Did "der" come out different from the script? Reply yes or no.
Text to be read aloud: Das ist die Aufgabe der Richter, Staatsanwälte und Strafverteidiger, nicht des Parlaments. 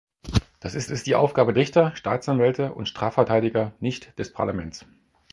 yes